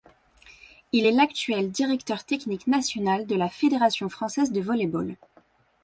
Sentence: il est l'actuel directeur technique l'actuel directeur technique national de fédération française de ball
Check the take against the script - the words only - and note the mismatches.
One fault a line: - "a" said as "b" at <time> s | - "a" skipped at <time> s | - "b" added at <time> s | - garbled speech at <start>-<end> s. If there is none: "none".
- "l'actuel directeur technique" skipped at 2.7 s
- "la" added at 3.3 s
- "volley" added at 4.6 s